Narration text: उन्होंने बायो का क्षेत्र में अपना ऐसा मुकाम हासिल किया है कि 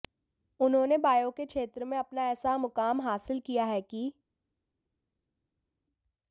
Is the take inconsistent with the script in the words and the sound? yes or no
yes